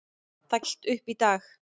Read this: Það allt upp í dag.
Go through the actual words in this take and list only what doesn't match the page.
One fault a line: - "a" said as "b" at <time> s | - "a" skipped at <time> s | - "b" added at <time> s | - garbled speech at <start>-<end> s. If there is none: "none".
none